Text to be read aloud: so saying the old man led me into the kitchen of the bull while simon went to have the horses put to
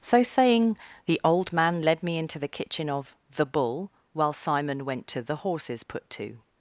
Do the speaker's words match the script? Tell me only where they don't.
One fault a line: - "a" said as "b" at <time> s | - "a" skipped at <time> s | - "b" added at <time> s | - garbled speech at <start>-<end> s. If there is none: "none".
- "have" skipped at 5.2 s